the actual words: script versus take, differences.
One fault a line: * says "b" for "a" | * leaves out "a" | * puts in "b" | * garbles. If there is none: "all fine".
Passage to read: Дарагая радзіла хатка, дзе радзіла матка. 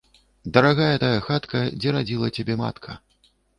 * says "тая" for "радзіла"
* puts in "цябе"